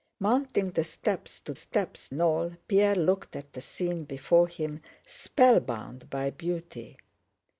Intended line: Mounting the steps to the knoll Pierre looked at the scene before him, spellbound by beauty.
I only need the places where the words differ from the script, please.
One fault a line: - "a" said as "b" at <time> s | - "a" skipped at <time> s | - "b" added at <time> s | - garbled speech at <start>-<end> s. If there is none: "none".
- "the" said as "steps" at 1.5 s